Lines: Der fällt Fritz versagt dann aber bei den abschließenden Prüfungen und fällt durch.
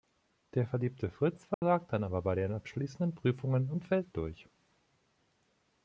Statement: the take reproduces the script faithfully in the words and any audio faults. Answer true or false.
false